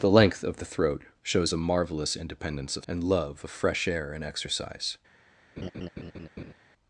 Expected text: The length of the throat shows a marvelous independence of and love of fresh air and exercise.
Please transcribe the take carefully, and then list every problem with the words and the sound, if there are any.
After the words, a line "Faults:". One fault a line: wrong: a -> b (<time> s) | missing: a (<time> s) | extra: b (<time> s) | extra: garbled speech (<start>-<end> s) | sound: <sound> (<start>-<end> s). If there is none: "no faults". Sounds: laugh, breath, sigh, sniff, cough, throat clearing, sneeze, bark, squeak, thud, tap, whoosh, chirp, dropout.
The length of the throat shows a marvelous independence of and love of fresh air and exercise.
Faults:
sound: laugh (5.6-6.5 s)